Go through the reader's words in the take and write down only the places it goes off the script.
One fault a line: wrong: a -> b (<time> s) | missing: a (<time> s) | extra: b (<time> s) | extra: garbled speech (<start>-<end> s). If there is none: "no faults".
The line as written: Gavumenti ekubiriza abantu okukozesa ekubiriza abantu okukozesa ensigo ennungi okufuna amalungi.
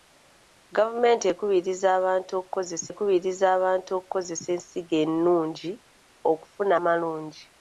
no faults